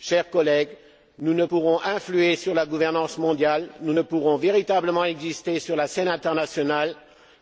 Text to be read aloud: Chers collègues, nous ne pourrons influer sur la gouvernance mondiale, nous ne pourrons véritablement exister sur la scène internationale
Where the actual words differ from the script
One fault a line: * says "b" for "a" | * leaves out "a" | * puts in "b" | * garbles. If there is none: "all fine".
all fine